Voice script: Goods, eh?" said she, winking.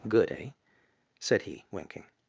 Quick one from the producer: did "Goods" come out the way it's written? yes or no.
no